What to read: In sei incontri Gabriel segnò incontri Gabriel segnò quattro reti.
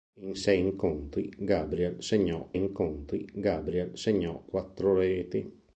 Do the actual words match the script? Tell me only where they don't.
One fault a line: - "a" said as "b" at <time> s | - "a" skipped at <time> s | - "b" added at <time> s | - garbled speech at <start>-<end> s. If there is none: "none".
none